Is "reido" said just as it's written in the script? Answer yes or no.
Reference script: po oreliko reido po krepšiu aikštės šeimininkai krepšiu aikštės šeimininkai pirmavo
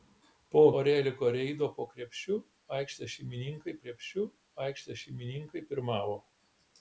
yes